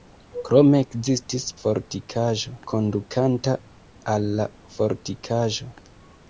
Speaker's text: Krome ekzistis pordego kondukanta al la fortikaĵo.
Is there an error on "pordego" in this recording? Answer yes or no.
yes